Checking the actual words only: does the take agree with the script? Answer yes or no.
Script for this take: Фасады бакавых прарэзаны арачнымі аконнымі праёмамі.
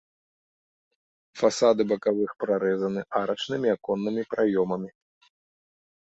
yes